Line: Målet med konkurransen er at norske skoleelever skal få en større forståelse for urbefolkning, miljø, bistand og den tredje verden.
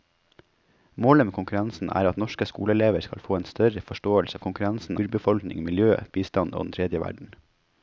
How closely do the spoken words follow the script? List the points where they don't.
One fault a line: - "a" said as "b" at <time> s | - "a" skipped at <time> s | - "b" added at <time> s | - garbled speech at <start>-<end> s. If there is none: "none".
- "for" said as "konkurransen" at 4.4 s